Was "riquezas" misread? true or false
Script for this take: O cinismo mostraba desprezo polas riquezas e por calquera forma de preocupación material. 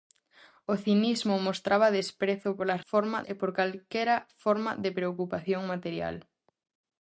true